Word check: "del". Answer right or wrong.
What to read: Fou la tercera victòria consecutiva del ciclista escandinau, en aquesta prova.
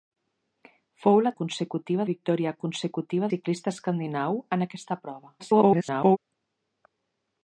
wrong